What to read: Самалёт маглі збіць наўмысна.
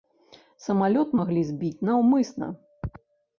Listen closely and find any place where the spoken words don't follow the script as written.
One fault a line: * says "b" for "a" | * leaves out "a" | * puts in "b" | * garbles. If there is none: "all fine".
all fine